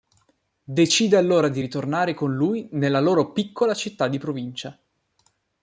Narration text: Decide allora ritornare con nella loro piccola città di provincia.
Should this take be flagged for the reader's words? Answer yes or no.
yes